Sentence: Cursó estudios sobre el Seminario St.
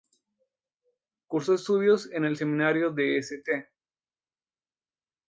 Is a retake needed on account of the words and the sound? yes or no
yes